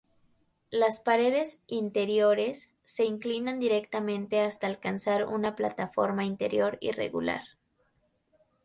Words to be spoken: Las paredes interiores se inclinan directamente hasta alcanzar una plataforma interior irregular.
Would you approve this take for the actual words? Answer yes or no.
yes